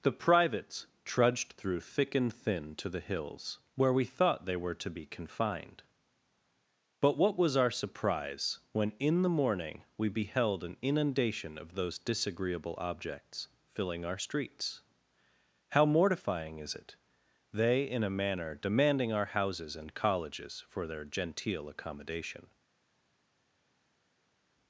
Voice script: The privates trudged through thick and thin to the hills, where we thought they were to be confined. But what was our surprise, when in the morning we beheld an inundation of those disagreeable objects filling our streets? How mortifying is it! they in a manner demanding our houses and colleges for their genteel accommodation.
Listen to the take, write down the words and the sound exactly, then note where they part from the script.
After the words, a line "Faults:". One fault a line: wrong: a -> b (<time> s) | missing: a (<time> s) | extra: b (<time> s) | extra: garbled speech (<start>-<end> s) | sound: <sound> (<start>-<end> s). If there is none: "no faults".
The privates trudged through thick and thin to the hills, where we thought they were to be confined. But what was our surprise, when in the morning we beheld an inundation of those disagreeable objects filling our streets? How mortifying is it! they in a manner demanding our houses and colleges for their genteel accommodation.
Faults:
no faults